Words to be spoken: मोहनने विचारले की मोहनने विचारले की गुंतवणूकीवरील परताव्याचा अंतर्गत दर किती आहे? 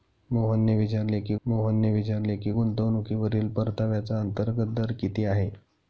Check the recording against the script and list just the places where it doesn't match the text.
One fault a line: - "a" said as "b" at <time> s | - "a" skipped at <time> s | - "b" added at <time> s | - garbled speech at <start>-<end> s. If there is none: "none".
none